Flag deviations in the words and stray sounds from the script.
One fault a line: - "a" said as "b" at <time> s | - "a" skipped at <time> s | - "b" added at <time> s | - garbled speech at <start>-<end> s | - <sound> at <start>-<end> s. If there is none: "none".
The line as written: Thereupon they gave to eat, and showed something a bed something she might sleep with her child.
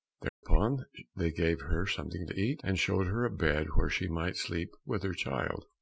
- dropout at 0.3-0.4 s
- "her something" added at 1.6 s
- "something" said as "her" at 3.1 s
- "something" said as "where" at 3.8 s